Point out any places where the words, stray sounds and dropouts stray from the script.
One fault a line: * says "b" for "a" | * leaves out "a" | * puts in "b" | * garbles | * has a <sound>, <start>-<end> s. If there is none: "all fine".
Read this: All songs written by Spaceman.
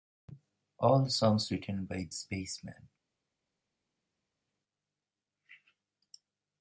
all fine